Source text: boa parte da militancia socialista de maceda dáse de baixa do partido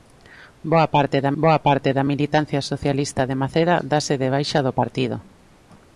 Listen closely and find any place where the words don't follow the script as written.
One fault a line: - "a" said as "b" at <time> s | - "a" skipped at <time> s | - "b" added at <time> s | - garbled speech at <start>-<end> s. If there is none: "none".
- "boa parte da" added at 1.4 s